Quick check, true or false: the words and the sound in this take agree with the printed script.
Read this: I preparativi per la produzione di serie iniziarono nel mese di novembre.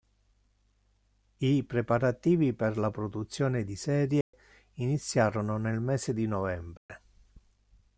false